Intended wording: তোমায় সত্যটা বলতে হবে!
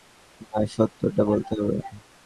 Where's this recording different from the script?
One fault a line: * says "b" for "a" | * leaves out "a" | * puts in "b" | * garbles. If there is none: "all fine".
all fine